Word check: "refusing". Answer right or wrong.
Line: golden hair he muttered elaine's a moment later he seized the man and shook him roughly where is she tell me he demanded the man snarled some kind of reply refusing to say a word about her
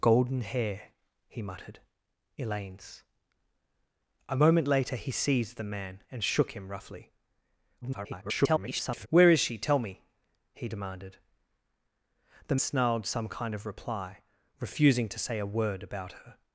right